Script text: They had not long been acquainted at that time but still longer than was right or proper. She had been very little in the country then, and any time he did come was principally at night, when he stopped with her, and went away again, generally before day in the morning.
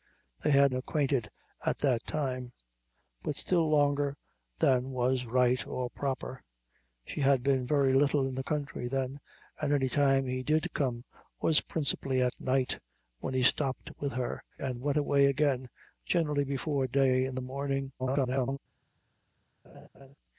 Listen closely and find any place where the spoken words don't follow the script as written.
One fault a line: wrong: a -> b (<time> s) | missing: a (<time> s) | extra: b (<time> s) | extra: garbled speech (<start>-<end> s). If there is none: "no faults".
missing: not long been (0.7 s)
extra: garbled speech (18.0-18.6 s)